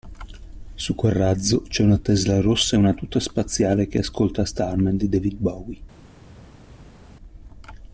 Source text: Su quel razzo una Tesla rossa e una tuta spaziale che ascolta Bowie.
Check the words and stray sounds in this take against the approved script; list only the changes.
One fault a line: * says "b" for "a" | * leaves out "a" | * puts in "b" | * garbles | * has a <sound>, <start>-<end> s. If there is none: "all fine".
* puts in "c'è"
* puts in "Starman di David"